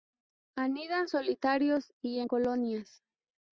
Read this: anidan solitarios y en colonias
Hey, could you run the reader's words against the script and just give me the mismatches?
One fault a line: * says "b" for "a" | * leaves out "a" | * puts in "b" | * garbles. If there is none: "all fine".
all fine